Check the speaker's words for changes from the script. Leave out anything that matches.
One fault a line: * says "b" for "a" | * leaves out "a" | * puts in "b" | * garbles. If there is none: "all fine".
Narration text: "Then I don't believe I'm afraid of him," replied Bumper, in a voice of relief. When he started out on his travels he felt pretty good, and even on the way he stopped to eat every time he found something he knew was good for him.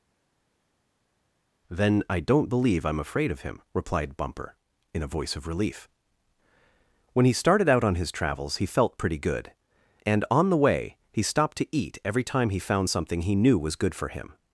* leaves out "even"